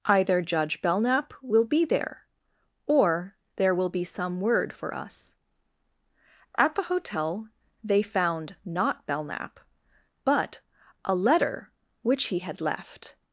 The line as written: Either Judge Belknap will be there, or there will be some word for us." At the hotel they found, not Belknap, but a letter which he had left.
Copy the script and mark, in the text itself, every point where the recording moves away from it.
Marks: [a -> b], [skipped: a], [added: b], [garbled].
Either Judge Belknap will be there, or there will be some word for us." At the hotel they found, not Belknap, but a letter which he had left.